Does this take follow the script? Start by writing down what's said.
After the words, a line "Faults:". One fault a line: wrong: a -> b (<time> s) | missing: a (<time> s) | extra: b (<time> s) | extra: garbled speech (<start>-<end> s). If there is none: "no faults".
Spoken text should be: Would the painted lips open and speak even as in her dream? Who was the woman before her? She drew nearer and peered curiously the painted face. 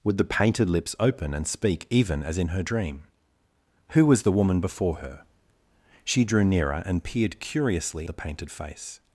Would the painted lips open and speak even as in her dream? Who was the woman before her? She drew nearer and peered curiously the painted face.
Faults:
no faults